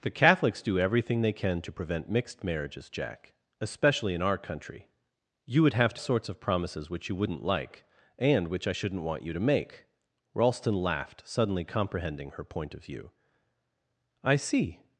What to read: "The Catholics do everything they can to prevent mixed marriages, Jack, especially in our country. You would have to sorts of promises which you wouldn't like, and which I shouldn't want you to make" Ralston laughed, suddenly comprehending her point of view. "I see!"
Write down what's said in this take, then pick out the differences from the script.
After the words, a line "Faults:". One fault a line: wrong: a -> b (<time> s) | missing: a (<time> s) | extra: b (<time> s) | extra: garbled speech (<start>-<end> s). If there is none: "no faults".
"The Catholics do everything they can to prevent mixed marriages, Jack, especially in our country. You would have to sorts of promises which you wouldn't like, and which I shouldn't want you to make" Ralston laughed, suddenly comprehending her point of view. "I see!"
Faults:
no faults